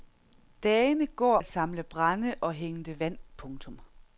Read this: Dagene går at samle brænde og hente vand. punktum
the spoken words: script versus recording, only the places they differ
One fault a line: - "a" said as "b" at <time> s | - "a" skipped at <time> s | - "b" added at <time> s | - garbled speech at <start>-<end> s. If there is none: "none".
none